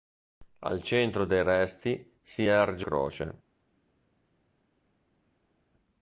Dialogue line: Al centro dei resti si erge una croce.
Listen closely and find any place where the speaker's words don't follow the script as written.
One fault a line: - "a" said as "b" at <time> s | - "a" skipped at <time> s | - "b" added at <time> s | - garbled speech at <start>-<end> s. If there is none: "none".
- "una" skipped at 2.9 s